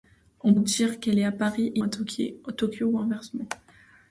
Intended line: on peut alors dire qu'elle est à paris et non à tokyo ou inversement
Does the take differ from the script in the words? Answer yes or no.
yes